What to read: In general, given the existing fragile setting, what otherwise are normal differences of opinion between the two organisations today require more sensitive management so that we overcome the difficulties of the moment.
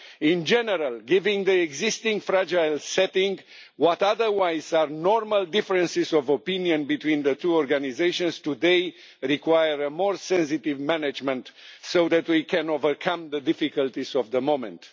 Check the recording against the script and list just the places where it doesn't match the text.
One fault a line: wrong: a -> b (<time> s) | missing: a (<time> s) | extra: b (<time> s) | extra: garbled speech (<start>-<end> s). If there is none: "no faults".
extra: can (12.4 s)